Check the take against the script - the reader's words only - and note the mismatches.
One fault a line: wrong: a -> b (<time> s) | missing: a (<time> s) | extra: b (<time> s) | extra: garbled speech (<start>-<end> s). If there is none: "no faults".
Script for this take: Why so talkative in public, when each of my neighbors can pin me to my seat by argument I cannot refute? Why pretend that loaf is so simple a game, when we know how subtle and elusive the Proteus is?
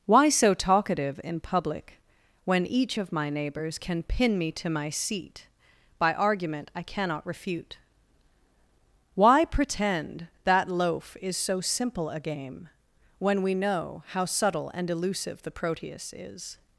no faults